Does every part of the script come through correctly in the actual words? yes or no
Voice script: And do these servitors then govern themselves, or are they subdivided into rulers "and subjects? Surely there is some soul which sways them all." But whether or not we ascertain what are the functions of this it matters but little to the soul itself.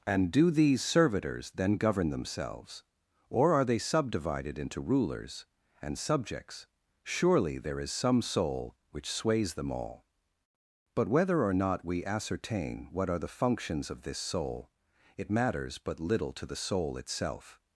no